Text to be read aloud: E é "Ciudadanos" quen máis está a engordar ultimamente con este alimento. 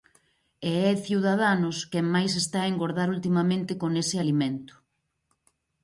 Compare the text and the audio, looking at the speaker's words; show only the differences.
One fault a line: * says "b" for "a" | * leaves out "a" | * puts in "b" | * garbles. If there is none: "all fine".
* says "ese" for "este"